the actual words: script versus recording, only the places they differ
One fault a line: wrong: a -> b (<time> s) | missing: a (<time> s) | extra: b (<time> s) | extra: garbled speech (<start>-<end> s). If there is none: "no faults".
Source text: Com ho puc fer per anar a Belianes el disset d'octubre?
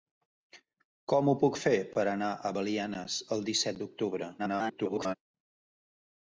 extra: garbled speech (4.4-5.2 s)